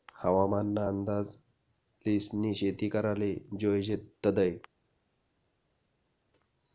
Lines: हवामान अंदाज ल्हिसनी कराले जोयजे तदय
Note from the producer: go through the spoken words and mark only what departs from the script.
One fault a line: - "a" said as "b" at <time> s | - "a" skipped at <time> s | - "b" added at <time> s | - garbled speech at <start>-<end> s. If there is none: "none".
- "ना" added at 0.7 s
- "शेती" added at 2.5 s